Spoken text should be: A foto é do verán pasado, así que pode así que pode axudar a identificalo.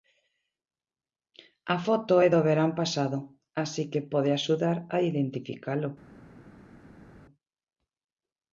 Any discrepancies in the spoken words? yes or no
yes